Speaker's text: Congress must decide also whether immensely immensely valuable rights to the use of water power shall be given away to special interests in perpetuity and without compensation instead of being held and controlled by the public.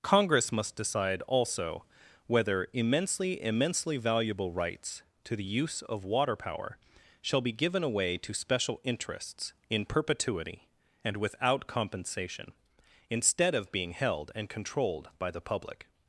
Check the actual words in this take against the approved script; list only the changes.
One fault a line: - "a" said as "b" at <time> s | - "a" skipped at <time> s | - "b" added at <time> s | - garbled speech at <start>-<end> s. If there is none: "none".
none